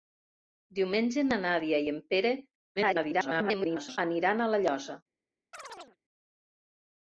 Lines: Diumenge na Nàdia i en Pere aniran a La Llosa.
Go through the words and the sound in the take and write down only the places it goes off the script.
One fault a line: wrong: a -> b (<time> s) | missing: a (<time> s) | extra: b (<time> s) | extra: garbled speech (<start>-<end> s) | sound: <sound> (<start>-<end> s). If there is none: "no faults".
extra: garbled speech (2.8-4.0 s)
sound: chirp (5.5-6.0 s)